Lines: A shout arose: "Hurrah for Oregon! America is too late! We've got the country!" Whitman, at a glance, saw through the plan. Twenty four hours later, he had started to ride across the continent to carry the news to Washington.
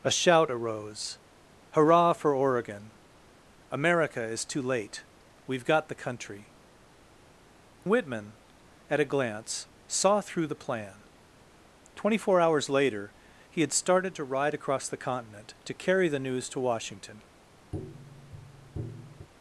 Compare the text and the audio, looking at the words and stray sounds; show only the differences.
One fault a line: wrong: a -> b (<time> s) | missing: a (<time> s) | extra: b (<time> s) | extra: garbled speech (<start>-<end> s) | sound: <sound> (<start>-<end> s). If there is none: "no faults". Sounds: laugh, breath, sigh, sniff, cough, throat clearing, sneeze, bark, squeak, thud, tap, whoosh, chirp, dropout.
sound: tap (17.7-19.3 s)